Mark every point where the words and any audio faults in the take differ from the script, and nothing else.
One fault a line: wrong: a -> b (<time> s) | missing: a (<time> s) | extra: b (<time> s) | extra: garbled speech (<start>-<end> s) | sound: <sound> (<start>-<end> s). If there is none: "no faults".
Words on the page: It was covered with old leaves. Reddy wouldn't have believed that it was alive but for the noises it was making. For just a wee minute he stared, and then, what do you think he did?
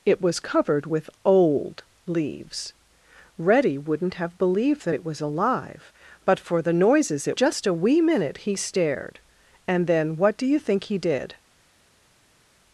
missing: was making For (7.4 s)